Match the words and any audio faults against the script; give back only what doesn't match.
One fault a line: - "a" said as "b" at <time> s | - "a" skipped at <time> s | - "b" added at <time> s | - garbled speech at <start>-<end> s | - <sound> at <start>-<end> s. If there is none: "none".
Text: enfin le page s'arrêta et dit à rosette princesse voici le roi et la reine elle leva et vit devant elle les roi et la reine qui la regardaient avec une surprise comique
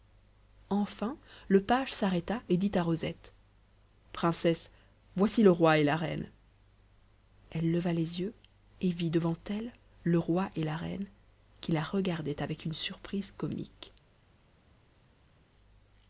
- "les yeux" added at 7.9 s
- "les" said as "le" at 10.0 s